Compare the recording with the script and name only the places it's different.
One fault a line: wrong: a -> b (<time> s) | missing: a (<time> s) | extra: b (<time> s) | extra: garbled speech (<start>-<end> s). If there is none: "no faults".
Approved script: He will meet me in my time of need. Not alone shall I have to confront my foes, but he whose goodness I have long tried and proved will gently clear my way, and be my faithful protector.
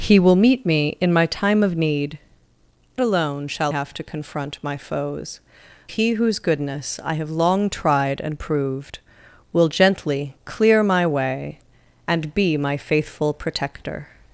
missing: Not (2.2 s)
missing: I (3.7 s)
missing: but (5.4 s)